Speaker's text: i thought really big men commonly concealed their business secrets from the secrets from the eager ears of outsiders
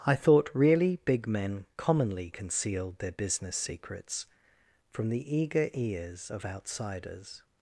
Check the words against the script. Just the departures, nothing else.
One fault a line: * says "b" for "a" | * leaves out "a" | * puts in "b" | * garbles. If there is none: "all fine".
* leaves out "secrets from the"